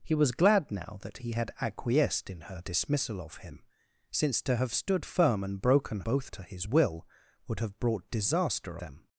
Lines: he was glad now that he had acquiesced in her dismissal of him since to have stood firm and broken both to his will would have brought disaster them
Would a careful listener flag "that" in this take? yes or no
no